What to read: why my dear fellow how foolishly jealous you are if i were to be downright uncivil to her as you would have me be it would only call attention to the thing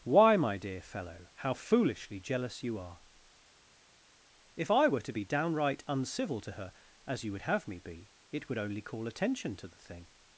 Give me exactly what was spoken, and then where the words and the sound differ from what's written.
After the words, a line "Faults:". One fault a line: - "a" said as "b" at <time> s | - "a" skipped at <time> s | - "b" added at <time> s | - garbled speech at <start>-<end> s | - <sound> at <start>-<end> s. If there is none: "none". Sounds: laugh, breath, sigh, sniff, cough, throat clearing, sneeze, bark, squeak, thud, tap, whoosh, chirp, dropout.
why my dear fellow how foolishly jealous you are if i were to be downright uncivil to her as you would have me be it would only call attention to the thing
Faults:
none